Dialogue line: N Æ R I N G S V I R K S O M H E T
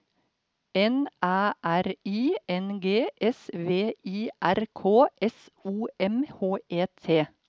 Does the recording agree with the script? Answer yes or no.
yes